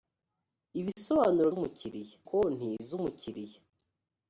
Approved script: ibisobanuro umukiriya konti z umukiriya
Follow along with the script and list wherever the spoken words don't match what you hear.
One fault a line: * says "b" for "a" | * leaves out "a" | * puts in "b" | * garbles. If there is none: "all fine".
all fine